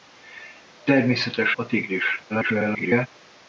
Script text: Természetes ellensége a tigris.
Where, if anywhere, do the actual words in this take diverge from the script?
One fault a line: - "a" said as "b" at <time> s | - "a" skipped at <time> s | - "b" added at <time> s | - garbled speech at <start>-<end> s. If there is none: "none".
- "ellensége" skipped at 1.6 s
- garbled speech at 2.3-3.1 s